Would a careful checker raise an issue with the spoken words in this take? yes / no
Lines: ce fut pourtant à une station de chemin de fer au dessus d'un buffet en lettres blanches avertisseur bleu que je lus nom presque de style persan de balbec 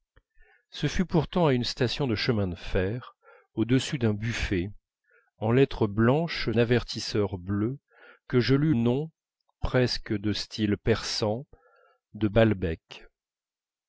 no